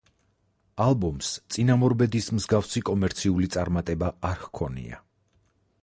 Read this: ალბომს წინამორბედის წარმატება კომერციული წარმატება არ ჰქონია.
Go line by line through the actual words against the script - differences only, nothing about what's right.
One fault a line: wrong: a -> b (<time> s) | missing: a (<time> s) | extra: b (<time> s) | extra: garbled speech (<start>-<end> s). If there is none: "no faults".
wrong: წარმატება -> მსგავსი (2.4 s)